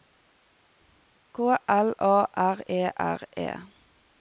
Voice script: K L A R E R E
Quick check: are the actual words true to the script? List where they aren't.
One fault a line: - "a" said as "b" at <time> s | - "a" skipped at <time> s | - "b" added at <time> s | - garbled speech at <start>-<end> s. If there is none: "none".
none